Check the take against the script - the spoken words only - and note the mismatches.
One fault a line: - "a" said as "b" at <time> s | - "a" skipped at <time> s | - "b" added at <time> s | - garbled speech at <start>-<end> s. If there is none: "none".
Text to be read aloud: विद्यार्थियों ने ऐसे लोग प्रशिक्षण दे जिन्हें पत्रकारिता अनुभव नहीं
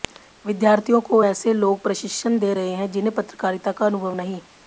- "ने" said as "को" at 1.0 s
- "रहे हैं" added at 2.5 s
- "का" added at 3.7 s